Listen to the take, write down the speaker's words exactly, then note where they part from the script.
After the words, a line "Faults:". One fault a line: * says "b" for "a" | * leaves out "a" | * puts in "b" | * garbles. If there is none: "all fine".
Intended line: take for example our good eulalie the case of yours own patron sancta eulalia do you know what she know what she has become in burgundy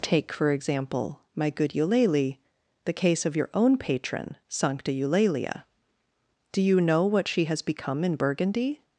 take for example my good eulalie the case of your own patron sancta eulalia do you know what she has become in burgundy
Faults:
* says "my" for "our"
* says "your" for "yours"
* leaves out "know what she"